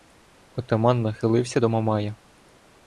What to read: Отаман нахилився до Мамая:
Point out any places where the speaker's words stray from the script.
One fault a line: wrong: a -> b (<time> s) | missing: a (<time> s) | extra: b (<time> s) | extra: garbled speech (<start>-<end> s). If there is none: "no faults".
no faults